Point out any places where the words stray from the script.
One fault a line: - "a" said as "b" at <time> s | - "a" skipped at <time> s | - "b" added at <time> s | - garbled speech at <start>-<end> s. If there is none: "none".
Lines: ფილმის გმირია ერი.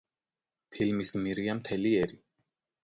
- "მთელი" added at 1.6 s